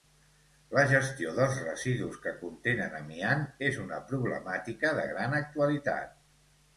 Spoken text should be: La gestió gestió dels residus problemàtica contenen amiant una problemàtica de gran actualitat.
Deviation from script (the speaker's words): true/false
true